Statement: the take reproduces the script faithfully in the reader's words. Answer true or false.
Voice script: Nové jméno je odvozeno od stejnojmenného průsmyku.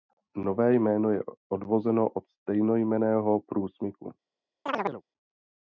true